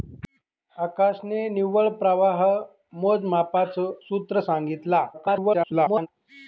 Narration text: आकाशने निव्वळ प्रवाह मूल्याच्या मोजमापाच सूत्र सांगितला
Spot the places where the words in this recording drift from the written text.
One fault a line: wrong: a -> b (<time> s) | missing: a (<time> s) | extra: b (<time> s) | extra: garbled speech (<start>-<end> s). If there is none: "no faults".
missing: मूल्याच्या (2.4 s)
extra: garbled speech (5.1-6.1 s)